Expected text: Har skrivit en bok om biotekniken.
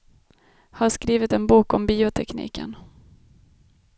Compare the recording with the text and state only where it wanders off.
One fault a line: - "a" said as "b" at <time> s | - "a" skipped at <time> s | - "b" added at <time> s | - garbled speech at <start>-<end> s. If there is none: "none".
none